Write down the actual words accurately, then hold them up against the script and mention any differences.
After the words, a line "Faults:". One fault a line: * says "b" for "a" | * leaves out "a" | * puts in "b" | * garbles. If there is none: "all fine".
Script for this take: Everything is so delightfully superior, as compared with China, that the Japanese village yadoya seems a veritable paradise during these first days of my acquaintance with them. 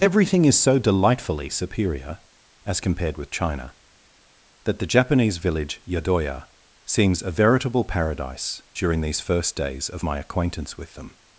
Everything is so delightfully superior, as compared with China, that the Japanese village yadoya seems a veritable paradise during these first days of my acquaintance with them.
Faults:
all fine